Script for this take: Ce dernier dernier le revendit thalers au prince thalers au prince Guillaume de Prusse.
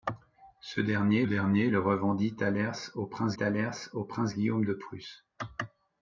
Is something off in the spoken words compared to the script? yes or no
no